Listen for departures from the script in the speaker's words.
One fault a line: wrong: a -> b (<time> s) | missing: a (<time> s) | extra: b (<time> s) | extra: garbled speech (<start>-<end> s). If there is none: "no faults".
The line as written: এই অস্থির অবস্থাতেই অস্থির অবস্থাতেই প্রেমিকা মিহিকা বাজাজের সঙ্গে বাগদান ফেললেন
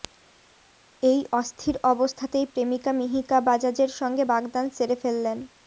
missing: অস্থির অবস্থাতেই (2.5 s)
extra: সেরে (4.7 s)